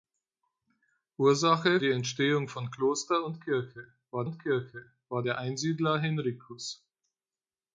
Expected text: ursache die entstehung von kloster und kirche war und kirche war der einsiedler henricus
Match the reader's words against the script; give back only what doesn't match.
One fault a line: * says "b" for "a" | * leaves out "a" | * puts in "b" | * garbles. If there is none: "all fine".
all fine